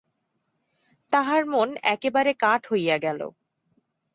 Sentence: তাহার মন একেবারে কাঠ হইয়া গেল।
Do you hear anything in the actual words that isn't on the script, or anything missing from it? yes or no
no